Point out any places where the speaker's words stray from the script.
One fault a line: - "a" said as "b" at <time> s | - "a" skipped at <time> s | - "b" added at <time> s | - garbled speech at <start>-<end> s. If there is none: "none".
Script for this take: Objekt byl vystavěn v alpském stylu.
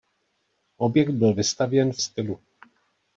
- "alpském" skipped at 2.0 s